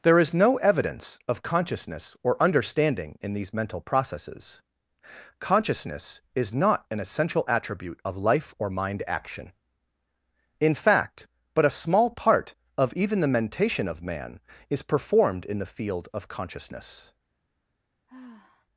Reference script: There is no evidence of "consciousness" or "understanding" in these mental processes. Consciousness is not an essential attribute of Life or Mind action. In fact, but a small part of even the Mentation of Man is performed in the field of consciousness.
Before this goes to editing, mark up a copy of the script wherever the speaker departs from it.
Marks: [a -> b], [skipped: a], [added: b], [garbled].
There is no evidence of "consciousness" or "understanding" in these mental processes. Consciousness is not an essential attribute of Life or Mind action. In fact, but a small part of even the Mentation of Man is performed in the field of consciousness.